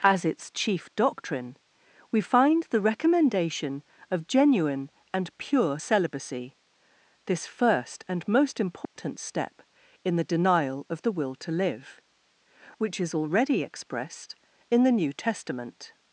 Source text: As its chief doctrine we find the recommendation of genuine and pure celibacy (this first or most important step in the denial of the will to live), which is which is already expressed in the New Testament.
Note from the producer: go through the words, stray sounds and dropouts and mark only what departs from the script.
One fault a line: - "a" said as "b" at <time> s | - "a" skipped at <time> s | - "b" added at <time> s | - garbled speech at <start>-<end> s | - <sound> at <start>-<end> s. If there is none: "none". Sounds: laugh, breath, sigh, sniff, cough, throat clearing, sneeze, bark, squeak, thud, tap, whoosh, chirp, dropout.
- "or" said as "and" at 8.1 s
- dropout at 8.8-9.0 s
- "which is" skipped at 13.1 s